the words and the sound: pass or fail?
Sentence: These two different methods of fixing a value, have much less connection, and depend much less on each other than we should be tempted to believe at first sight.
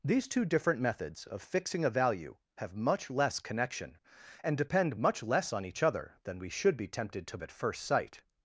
fail